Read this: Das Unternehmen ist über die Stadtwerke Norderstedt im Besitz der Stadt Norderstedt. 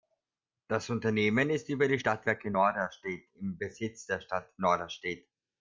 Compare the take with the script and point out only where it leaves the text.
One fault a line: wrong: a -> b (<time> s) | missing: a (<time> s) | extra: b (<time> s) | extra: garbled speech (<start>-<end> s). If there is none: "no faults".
no faults